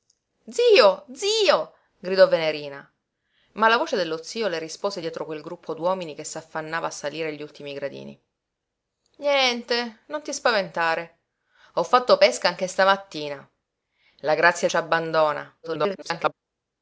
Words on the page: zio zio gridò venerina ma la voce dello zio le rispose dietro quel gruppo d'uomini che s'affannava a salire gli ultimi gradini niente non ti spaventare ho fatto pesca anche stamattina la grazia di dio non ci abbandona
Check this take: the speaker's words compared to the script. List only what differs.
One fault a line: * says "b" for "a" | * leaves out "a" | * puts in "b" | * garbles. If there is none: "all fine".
* leaves out "di dio non"
* garbles